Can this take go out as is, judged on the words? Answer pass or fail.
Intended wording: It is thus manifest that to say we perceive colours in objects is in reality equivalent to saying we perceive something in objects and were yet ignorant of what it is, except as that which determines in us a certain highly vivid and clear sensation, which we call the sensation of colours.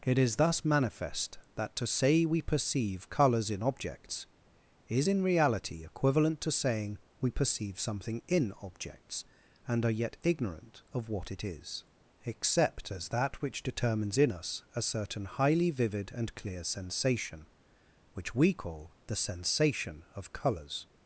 fail